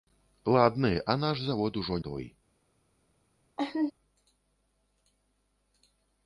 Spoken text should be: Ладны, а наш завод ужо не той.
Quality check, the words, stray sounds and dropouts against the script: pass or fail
fail